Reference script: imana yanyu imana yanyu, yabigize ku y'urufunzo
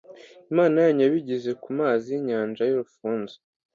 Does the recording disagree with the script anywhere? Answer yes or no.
yes